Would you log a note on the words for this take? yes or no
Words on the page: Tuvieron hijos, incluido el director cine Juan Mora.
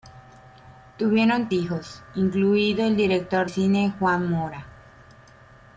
no